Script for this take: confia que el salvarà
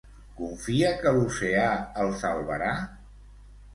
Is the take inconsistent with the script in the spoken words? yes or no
yes